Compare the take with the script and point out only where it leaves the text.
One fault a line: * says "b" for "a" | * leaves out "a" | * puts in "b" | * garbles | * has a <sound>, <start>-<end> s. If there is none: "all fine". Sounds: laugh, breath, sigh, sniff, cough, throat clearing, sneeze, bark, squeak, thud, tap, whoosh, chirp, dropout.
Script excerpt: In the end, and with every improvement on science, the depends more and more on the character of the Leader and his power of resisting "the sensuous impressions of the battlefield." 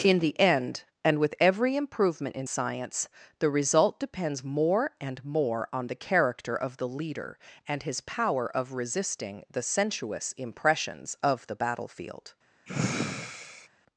* says "in" for "on"
* puts in "result"
* has a sigh, 12.7-13.7 s